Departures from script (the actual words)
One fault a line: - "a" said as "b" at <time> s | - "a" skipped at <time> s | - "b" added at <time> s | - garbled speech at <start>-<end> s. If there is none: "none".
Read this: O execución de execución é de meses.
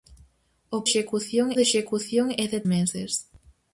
none